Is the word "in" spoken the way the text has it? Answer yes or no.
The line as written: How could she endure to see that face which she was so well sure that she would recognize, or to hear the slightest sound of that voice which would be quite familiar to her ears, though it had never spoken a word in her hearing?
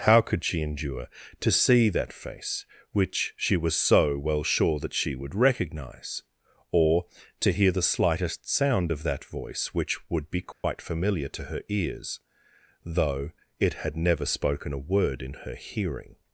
yes